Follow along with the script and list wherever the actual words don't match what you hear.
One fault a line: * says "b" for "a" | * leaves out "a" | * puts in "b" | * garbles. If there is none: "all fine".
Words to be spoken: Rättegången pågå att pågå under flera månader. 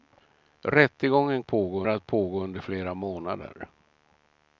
all fine